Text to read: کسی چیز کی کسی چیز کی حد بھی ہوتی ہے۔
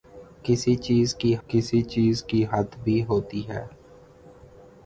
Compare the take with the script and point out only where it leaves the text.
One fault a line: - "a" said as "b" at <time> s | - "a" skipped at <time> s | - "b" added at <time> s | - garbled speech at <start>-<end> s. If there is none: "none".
none